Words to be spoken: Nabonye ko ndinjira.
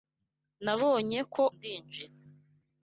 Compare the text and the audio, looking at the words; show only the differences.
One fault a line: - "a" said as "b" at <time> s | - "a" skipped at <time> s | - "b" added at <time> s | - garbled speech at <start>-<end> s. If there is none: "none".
none